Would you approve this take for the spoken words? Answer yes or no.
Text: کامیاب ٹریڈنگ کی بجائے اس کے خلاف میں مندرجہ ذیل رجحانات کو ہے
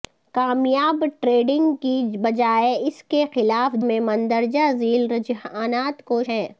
yes